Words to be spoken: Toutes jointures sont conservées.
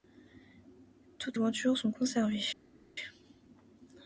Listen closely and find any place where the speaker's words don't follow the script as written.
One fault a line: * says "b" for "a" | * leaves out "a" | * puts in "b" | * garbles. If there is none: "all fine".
all fine